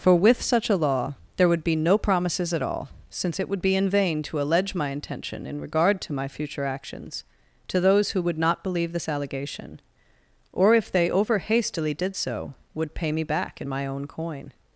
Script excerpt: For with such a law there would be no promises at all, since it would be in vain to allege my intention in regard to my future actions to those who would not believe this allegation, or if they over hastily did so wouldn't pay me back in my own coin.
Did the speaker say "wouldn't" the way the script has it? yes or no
no